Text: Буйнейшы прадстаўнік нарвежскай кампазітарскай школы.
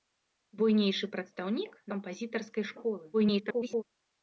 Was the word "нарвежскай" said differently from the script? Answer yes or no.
yes